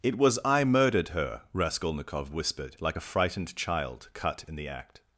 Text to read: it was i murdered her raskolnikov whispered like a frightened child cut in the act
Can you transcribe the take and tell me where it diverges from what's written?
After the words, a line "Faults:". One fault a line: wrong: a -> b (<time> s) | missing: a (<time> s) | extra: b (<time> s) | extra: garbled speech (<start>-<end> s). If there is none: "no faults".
it was i murdered her raskolnikov whispered like a frightened child cut in the act
Faults:
no faults